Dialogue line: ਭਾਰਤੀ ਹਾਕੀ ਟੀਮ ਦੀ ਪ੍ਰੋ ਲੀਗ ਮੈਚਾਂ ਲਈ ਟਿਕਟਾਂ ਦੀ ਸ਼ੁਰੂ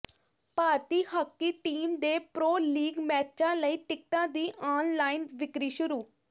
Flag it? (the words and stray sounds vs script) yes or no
yes